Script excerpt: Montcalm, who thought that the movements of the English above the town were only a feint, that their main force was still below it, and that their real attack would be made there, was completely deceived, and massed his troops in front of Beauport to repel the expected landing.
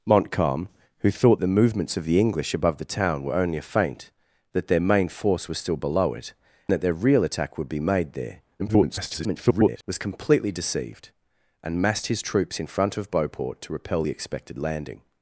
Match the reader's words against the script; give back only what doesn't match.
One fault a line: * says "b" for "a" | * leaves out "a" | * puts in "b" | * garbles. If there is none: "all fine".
* leaves out "that"
* leaves out "and"
* garbles